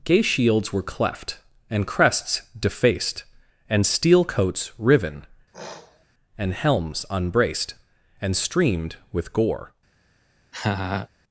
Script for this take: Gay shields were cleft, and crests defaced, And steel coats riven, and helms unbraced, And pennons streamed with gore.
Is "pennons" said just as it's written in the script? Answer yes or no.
no